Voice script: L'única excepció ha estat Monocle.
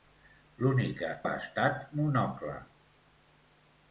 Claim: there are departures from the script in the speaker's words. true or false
true